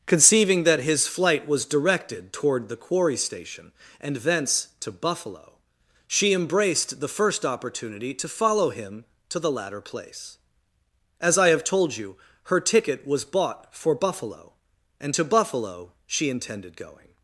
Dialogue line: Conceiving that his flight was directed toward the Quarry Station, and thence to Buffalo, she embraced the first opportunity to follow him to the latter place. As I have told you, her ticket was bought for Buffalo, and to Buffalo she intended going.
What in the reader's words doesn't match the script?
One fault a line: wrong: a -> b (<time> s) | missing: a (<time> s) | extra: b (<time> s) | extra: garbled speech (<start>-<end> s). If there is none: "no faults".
no faults